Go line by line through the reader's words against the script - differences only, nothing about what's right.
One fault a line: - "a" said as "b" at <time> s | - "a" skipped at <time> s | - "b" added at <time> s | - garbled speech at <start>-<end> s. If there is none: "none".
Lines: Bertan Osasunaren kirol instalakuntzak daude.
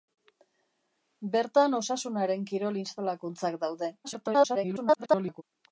- garbled speech at 4.0-5.4 s